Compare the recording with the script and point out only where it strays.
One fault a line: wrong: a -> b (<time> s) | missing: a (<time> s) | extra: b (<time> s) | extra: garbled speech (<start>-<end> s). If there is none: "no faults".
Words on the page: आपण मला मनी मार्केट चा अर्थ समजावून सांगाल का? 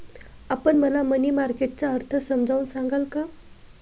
no faults